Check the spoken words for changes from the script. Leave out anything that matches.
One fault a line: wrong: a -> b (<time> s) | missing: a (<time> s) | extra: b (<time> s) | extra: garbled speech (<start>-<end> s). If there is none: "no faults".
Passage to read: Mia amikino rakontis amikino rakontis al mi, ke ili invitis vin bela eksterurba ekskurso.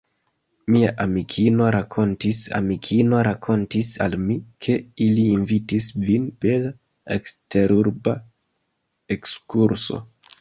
no faults